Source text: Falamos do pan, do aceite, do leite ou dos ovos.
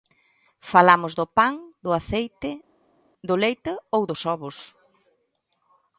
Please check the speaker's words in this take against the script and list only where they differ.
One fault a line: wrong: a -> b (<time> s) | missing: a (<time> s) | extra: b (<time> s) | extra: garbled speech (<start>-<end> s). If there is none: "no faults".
no faults